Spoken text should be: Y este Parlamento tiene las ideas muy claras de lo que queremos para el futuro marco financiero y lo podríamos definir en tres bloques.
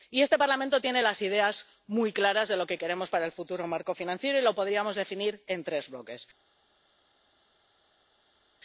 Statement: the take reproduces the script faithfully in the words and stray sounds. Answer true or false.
true